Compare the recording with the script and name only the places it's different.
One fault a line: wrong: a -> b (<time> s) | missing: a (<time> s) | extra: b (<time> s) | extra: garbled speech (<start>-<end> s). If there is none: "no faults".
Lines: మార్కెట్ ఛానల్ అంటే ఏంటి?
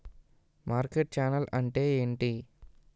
no faults